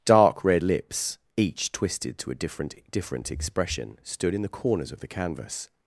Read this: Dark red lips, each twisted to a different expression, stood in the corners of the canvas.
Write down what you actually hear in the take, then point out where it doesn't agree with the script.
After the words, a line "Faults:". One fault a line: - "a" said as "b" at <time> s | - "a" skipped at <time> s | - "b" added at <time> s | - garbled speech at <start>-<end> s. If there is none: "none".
Dark red lips, each twisted to a different different expression, stood in the corners of the canvas.
Faults:
- "different" added at 2.9 s